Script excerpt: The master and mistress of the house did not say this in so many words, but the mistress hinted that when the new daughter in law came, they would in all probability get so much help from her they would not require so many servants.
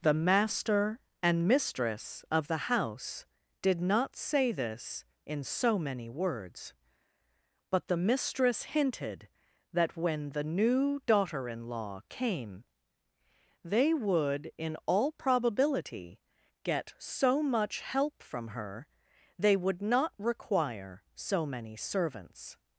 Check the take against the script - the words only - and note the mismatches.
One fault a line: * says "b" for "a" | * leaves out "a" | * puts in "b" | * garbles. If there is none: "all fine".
all fine